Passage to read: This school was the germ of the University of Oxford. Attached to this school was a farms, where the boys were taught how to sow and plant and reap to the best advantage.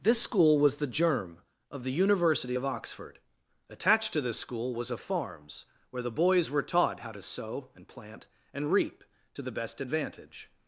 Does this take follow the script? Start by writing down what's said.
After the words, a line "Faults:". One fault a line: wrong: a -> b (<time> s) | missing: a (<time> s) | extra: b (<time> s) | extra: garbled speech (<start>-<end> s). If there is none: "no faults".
This school was the germ of the University of Oxford. Attached to this school was a farms, where the boys were taught how to sow and plant and reap to the best advantage.
Faults:
no faults